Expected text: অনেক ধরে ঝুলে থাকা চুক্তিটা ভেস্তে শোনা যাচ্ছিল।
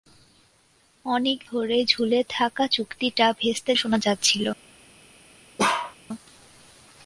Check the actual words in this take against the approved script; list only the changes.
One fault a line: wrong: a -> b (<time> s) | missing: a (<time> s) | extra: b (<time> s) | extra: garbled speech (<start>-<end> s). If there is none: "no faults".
no faults